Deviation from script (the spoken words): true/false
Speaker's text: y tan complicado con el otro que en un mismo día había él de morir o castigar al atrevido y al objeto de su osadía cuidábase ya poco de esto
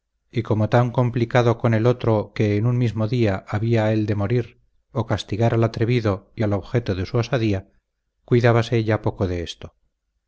true